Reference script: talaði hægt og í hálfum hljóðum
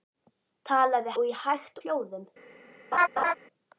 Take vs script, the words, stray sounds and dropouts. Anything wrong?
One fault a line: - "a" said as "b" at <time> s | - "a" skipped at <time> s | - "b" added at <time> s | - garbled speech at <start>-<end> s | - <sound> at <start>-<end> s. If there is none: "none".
- "hægt" skipped at 1.1 s
- "hálfum" said as "hægt" at 1.4 s
- laugh at 2.9-3.3 s